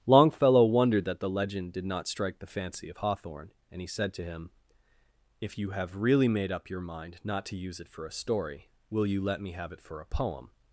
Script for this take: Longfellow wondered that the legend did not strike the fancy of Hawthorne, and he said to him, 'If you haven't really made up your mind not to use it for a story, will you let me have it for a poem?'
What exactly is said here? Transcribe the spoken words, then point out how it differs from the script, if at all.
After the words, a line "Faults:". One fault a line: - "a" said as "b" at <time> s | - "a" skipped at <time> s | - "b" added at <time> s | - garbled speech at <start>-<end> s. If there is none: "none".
Longfellow wondered that the legend did not strike the fancy of Hawthorne, and he said to him, 'If you have really made up your mind not to use it for a story, will you let me have it for a poem?'
Faults:
- "haven't" said as "have" at 5.7 s